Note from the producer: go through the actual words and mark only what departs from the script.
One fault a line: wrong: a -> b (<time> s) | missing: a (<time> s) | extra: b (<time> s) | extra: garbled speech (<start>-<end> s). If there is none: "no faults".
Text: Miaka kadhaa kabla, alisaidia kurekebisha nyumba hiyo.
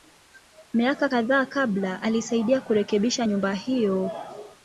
no faults